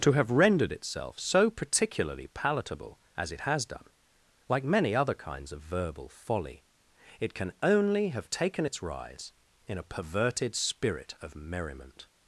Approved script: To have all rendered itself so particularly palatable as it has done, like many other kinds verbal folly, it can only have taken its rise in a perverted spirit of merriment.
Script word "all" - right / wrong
wrong